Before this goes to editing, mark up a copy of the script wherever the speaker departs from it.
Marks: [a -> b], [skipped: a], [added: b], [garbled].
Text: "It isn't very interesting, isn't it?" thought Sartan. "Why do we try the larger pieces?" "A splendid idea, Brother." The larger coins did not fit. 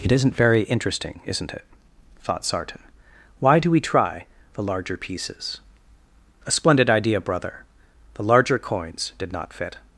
"It isn't very interesting, isn't it?" thought Sartan. "Why do we try the larger pieces?" "A splendid idea, Brother." The larger coins did not fit.